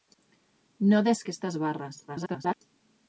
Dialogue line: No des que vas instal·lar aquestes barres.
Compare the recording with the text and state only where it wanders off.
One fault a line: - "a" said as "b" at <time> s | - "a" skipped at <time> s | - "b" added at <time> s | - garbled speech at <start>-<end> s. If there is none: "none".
- "que vas instal·lar" skipped at 1.2 s
- garbled speech at 2.1-2.6 s